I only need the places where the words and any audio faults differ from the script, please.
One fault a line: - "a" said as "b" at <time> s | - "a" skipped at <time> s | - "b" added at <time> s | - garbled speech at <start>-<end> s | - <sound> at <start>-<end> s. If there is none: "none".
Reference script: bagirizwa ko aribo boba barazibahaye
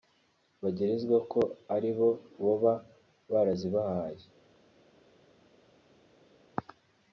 none